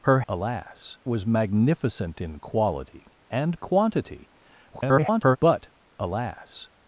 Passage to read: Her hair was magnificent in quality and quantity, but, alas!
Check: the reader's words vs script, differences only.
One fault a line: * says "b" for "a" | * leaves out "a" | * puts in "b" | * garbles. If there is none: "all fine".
* says "alas" for "hair"
* garbles